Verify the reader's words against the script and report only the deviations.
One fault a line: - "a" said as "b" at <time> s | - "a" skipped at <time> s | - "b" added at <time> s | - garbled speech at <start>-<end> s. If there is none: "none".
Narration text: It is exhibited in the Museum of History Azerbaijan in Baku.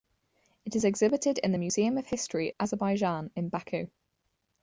none